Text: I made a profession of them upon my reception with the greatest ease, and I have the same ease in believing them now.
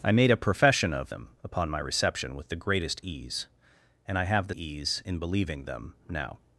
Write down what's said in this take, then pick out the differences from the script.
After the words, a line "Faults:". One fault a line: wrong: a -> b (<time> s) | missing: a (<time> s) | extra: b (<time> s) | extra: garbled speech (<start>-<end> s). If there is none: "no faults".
I made a profession of them upon my reception with the greatest ease, and I have the ease in believing them now.
Faults:
missing: same (4.5 s)